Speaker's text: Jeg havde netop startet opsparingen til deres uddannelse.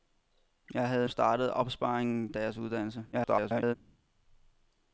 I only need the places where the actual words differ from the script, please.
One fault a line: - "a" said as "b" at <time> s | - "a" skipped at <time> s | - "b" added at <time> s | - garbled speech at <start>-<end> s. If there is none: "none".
- "netop" skipped at 1.1 s
- "til" skipped at 2.3 s
- garbled speech at 3.1-3.8 s